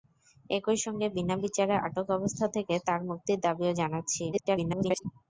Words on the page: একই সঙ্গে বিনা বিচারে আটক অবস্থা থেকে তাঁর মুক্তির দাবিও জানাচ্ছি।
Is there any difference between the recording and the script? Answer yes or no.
yes